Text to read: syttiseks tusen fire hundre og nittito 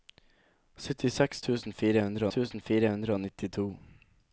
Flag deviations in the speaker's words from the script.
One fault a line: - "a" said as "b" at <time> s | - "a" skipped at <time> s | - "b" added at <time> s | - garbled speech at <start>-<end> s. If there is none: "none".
- "tusen fire hundre" added at 2.3 s